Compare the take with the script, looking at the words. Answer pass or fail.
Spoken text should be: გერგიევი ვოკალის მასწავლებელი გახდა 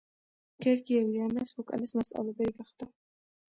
fail